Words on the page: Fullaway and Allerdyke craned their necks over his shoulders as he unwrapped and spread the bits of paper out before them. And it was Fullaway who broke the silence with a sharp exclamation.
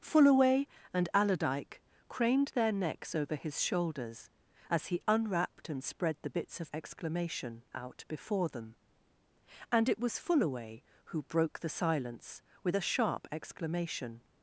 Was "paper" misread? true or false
true